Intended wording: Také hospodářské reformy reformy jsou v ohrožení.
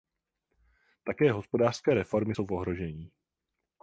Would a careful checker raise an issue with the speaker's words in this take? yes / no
yes